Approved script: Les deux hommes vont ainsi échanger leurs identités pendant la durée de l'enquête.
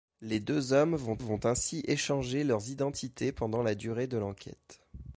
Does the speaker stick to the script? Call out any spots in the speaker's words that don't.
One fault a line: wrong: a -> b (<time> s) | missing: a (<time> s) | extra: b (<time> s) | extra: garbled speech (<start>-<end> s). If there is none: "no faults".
extra: vont (1.2 s)